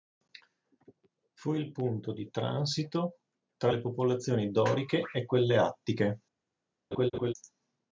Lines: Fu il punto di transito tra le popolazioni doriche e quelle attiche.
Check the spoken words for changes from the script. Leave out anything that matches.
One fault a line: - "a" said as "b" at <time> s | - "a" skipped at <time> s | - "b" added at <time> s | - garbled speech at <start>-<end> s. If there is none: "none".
none